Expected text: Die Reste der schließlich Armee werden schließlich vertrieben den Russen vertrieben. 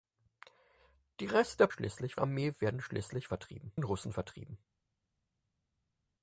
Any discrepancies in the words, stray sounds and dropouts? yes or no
no